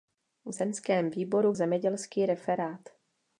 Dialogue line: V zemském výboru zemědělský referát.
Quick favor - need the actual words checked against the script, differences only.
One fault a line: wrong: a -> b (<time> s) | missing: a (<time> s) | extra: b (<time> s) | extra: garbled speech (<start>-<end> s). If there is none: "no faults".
no faults